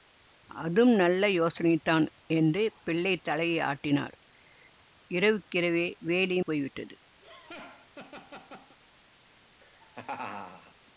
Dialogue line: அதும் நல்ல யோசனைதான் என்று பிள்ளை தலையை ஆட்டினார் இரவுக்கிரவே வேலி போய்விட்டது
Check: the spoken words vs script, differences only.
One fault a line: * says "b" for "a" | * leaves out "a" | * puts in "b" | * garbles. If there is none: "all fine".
all fine